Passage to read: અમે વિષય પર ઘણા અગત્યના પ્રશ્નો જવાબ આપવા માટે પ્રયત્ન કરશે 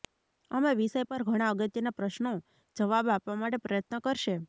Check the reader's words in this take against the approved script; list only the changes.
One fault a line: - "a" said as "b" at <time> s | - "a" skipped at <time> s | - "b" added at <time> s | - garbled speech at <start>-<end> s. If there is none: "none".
none